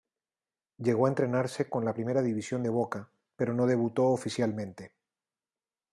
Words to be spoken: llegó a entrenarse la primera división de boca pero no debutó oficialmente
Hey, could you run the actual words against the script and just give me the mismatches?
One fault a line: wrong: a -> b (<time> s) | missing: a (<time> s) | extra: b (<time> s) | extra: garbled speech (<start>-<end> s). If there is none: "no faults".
extra: con (1.7 s)